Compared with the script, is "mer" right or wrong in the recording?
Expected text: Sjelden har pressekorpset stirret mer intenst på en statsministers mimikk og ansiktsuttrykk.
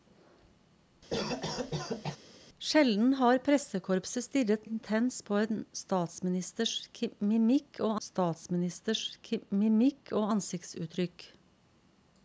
wrong